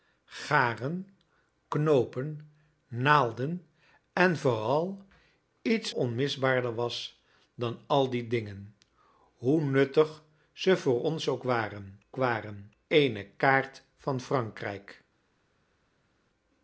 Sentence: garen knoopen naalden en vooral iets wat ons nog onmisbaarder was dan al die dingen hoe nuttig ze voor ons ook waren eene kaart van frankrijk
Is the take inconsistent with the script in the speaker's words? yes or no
yes